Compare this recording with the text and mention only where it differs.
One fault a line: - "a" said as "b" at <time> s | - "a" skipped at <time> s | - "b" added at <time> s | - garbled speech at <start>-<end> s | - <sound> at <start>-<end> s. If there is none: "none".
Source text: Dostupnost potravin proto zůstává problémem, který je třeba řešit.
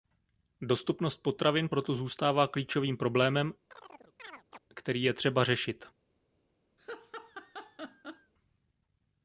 - "klíčovým" added at 2.5 s
- chirp at 3.7-4.6 s
- laugh at 6.8-8.3 s